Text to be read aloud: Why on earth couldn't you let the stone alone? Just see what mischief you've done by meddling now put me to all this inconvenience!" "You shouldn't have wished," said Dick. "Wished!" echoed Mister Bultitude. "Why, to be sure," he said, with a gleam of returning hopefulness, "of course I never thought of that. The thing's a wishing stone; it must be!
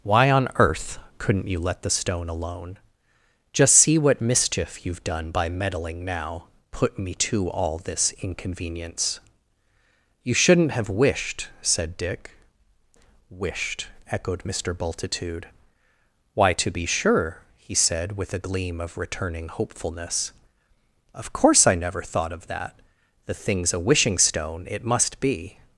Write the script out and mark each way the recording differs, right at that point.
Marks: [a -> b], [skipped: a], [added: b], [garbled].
Why on earth couldn't you let the stone alone? Just see what mischief you've done by meddling now put me to all this inconvenience!" "You shouldn't have wished," said Dick. "Wished!" echoed Mister Bultitude. "Why, to be sure," he said, with a gleam of returning hopefulness, "of course I never thought of that. The thing's a wishing stone; it must be!